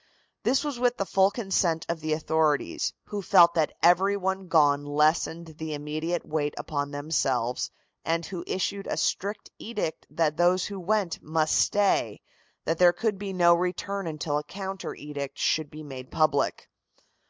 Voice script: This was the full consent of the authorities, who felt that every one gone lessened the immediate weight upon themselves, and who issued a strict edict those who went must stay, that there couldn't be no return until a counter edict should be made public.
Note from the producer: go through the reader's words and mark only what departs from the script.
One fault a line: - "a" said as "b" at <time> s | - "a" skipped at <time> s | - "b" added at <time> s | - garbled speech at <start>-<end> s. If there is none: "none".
- "with" added at 0.8 s
- "that" added at 10.1 s
- "couldn't" said as "could" at 12.9 s